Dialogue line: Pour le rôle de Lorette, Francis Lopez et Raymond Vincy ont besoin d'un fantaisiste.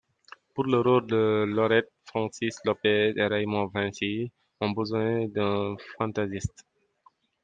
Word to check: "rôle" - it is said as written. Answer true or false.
true